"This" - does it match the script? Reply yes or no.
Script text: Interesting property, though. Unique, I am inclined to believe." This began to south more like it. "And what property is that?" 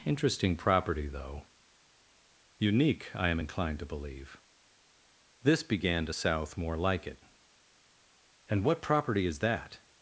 yes